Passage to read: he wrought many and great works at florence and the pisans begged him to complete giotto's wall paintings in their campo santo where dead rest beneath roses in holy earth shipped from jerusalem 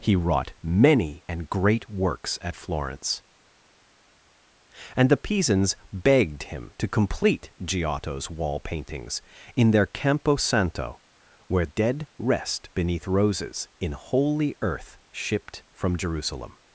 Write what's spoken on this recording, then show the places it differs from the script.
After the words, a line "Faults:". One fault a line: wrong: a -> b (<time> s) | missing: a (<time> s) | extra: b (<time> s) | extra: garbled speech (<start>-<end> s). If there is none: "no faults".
he wrought many and great works at florence and the pisans begged him to complete giotto's wall paintings in their campo santo where dead rest beneath roses in holy earth shipped from jerusalem
Faults:
no faults